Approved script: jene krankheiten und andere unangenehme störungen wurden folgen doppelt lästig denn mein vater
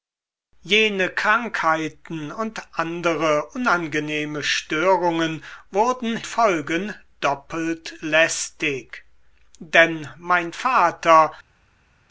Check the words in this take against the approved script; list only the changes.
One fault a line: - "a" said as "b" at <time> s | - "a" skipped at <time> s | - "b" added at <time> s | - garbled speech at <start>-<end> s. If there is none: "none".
none